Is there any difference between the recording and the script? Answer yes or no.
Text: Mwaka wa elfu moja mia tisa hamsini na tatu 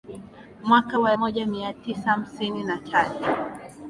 yes